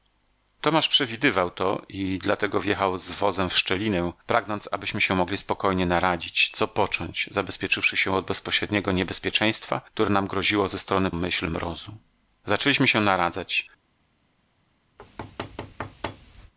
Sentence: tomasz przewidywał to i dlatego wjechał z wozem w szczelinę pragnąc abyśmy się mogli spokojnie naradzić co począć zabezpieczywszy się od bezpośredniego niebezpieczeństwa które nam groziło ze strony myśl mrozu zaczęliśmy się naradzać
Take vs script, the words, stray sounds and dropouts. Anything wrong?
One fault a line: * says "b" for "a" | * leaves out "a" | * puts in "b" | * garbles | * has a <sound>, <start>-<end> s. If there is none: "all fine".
* has a thud, 15.0-16.5 s